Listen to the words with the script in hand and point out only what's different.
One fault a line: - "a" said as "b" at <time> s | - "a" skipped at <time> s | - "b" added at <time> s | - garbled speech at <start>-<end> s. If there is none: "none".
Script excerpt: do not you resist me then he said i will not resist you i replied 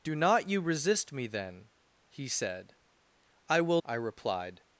- "not resist you" skipped at 3.8 s